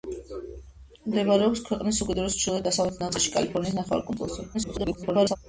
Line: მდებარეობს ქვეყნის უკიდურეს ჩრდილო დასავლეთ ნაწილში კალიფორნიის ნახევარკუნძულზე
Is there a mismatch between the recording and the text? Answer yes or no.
yes